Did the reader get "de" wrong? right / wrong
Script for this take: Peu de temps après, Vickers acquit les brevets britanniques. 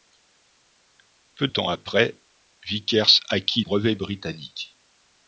wrong